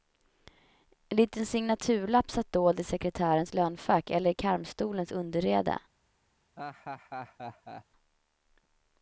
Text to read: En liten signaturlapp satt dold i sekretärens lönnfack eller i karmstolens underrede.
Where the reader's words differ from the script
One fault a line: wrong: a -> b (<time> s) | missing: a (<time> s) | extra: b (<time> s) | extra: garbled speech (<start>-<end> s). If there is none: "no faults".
no faults